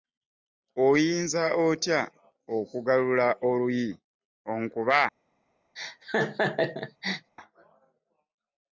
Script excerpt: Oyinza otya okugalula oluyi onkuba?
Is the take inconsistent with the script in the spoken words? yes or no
no